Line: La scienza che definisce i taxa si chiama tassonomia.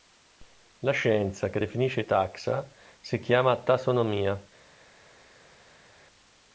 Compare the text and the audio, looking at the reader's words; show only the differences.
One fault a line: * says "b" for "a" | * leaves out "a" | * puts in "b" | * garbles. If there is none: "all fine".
all fine